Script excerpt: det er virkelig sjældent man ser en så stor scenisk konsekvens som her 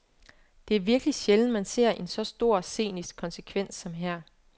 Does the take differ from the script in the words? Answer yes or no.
no